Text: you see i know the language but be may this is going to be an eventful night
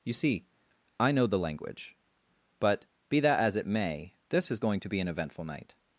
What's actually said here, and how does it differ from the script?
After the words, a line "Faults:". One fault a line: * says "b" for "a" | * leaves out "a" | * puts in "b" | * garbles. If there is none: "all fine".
you see i know the language but be that as it may this is going to be an eventful night
Faults:
* puts in "that as it"